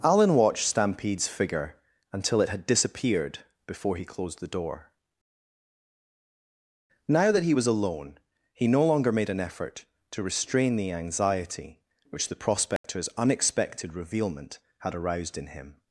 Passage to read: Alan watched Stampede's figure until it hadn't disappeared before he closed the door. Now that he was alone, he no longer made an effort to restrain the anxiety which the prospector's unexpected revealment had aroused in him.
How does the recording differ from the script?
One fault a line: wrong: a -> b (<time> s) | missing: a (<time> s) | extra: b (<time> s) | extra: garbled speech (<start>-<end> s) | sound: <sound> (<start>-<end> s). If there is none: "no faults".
wrong: hadn't -> had (2.5 s)
sound: dropout (12.8-12.8 s)